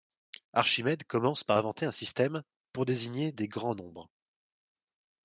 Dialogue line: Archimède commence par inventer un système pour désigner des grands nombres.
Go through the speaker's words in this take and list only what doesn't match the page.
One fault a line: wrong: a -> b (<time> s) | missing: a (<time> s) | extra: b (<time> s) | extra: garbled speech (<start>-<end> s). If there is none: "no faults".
no faults